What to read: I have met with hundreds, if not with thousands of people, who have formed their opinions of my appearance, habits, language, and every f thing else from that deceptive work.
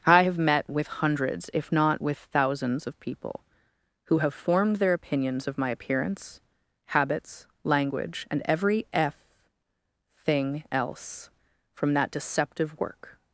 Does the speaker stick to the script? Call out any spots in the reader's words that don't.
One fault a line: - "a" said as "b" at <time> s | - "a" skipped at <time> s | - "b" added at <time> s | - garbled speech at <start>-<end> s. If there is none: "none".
none